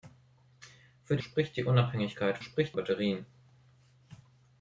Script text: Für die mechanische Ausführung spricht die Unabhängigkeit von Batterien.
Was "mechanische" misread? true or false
true